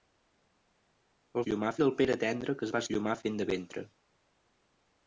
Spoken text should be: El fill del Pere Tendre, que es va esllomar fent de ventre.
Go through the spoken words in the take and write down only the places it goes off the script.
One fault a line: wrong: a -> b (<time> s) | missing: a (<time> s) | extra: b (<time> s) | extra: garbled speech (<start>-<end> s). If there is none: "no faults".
wrong: fill -> esllomar (1.4 s)